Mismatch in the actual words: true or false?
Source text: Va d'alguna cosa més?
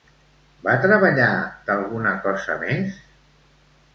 true